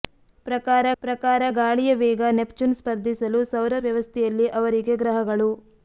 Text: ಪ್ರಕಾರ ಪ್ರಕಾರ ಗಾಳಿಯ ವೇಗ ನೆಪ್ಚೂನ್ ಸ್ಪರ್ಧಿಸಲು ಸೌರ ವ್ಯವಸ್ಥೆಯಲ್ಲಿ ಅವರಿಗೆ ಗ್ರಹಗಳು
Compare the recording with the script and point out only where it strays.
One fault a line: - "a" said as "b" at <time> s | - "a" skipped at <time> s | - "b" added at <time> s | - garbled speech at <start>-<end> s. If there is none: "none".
none